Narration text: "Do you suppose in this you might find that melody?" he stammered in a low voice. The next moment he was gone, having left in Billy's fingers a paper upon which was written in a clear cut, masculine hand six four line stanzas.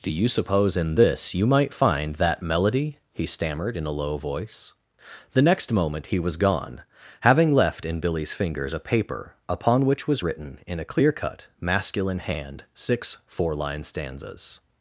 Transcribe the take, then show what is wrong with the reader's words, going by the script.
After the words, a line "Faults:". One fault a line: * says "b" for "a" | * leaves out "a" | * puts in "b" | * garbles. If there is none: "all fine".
"Do you suppose in this you might find that melody?" he stammered in a low voice. The next moment he was gone, having left in Billy's fingers a paper upon which was written in a clear cut, masculine hand six four line stanzas.
Faults:
all fine